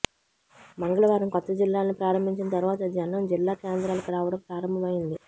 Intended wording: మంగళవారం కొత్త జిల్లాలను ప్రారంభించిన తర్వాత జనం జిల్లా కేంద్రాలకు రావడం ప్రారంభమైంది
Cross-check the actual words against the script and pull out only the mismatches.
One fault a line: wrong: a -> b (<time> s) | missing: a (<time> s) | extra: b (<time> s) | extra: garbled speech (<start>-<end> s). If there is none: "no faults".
no faults